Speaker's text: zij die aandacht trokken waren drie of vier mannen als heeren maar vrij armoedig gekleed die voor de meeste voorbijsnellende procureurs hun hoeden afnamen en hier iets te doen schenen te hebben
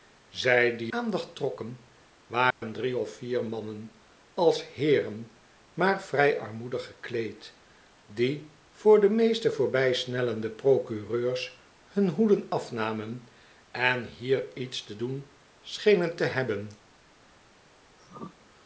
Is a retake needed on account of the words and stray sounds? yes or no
yes